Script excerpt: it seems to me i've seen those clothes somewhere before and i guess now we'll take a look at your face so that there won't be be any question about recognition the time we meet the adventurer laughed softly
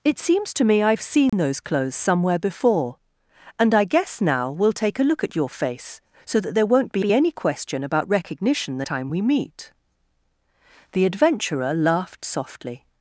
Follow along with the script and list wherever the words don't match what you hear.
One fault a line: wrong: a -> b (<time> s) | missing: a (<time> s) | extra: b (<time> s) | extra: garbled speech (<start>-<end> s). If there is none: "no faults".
no faults